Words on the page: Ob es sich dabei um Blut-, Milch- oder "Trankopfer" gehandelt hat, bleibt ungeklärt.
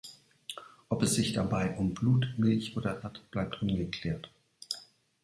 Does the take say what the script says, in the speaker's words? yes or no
no